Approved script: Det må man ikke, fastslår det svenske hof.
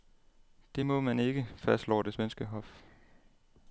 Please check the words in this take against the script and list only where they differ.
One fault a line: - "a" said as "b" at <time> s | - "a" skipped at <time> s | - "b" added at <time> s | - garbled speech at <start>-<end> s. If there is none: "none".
none